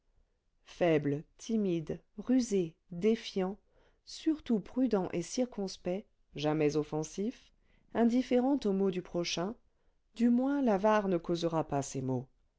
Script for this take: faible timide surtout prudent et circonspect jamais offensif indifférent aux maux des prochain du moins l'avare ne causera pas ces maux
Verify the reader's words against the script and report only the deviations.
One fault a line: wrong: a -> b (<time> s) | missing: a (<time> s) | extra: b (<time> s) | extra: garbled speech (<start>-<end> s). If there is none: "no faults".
extra: rusé défiant (2.2 s)
wrong: des -> du (8.9 s)